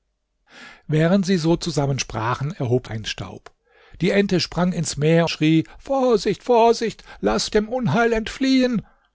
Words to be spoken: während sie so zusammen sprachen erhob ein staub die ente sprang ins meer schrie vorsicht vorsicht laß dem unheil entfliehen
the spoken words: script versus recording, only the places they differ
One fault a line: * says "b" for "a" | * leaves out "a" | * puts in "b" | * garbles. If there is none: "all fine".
all fine